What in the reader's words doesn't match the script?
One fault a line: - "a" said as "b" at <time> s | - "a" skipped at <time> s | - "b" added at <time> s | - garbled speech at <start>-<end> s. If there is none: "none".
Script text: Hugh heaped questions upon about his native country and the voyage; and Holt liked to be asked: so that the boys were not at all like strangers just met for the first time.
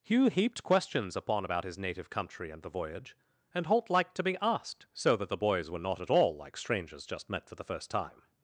none